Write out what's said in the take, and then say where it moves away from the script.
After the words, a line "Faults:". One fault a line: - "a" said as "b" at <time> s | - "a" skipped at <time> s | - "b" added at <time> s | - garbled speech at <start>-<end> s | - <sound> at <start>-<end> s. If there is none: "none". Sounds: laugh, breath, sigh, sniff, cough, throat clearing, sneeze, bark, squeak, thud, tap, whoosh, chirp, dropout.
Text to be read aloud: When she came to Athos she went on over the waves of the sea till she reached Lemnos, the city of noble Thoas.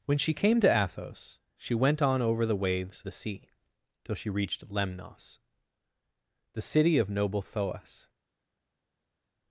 When she came to Athos she went on over the waves the sea till she reached Lemnos, the city of noble Thoas.
Faults:
- "of" skipped at 3.0 s